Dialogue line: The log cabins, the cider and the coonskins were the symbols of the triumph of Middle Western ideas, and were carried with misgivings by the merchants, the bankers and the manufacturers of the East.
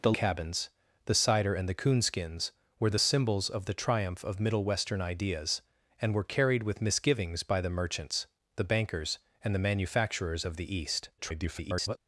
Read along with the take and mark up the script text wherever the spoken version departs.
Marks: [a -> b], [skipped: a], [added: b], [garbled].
The [skipped: log] cabins, the cider and the coonskins were the symbols of the triumph of Middle Western ideas, and were carried with misgivings by the merchants, the bankers and the manufacturers of the East. [garbled]